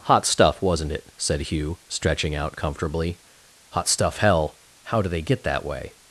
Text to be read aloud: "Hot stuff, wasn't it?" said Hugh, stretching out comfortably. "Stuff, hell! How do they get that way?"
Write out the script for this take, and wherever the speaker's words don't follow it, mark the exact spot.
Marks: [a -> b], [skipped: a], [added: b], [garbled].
"Hot stuff, wasn't it?" said Hugh, stretching out comfortably. [added: Hot] "Stuff, hell! How do they get that way?"